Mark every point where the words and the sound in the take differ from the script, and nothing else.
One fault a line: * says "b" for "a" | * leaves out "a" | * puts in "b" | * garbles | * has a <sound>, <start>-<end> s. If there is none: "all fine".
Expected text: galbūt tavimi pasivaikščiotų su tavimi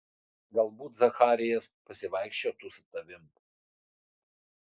* says "zacharijas" for "tavimi"